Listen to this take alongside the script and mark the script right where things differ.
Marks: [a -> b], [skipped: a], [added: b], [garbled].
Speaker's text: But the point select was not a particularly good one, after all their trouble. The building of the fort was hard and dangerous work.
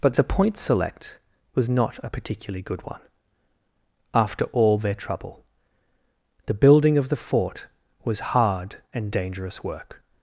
But the point select was not a particularly good one, after all their trouble. The building of the fort was hard and dangerous work.